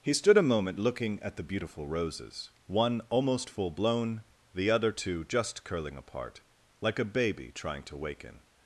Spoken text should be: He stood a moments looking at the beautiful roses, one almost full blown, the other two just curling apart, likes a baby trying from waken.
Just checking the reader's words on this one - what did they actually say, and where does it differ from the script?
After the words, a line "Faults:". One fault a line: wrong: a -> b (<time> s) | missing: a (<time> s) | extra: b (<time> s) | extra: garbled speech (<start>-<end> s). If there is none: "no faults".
He stood a moment looking at the beautiful roses, one almost full blown, the other two just curling apart, like a baby trying to waken.
Faults:
wrong: moments -> moment (0.5 s)
wrong: likes -> like (6.8 s)
wrong: from -> to (7.8 s)